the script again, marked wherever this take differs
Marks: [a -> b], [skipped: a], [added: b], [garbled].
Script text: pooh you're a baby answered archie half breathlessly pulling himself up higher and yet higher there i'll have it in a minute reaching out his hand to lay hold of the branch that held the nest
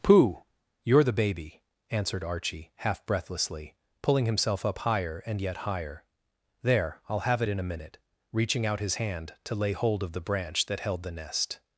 pooh you're [a -> the] baby answered archie half breathlessly pulling himself up higher and yet higher there i'll have it in a minute reaching out his hand to lay hold of the branch that held the nest